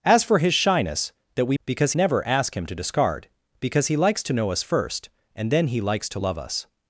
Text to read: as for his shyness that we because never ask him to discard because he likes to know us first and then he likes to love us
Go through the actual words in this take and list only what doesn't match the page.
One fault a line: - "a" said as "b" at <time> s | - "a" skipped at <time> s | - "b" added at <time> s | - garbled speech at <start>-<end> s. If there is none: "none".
none